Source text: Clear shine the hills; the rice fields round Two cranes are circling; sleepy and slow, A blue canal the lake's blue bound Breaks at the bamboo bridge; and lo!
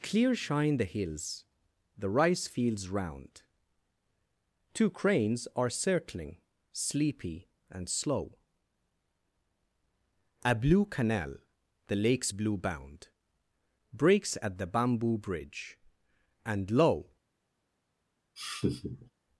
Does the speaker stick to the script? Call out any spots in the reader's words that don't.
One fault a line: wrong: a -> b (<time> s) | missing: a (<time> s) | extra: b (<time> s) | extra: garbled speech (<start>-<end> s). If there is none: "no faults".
no faults